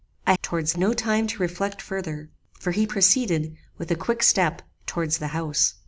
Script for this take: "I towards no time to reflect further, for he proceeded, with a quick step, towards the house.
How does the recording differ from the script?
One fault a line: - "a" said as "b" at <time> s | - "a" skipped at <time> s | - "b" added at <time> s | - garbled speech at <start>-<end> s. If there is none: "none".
none